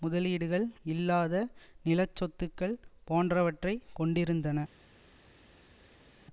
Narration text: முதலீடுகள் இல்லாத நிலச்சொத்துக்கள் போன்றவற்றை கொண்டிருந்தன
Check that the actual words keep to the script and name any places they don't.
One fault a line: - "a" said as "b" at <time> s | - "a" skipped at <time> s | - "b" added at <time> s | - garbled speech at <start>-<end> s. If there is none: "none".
none